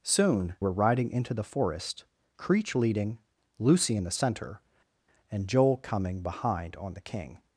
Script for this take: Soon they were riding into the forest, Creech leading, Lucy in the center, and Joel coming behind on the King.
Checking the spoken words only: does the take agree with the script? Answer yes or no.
no